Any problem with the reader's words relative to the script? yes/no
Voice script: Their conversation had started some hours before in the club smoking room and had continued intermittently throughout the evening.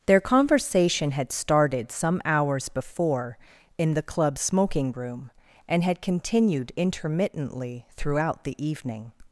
no